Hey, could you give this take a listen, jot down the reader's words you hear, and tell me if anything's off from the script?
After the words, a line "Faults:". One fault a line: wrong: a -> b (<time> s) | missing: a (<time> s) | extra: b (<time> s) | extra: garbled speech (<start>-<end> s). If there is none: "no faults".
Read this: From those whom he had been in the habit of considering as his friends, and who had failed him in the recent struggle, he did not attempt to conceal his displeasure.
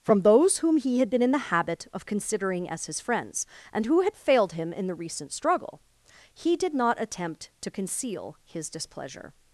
From those whom he had been in the habit of considering as his friends, and who had failed him in the recent struggle, he did not attempt to conceal his displeasure.
Faults:
no faults